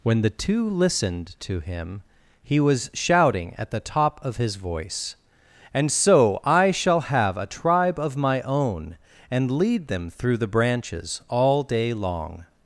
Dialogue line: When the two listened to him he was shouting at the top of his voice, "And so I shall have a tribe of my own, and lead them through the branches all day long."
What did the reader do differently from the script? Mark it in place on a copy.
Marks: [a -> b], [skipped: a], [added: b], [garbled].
When the two listened to him he was shouting at the top of his voice, "And so I shall have a tribe of my own, and lead them through the branches all day long."